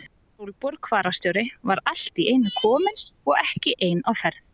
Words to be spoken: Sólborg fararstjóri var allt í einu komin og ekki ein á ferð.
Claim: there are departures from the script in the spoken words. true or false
false